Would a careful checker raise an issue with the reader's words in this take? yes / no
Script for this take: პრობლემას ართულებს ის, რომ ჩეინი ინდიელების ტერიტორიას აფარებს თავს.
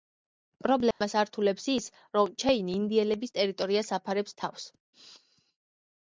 no